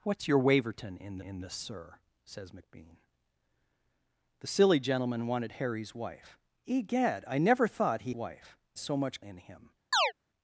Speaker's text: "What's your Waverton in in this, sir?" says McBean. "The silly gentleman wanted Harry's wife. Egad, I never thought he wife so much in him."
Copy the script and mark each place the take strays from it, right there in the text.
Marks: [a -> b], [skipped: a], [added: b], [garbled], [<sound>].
"What's your Waverton in in this, sir?" says McBean. "The silly gentleman wanted Harry's wife. Egad, I never thought he wife so much in him." [chirp]